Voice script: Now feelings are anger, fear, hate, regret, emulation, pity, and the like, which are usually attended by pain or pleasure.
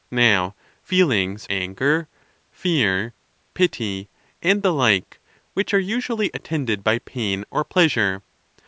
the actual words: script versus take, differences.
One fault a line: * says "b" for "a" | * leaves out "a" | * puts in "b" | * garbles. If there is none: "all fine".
* leaves out "are"
* leaves out "hate regret emulation"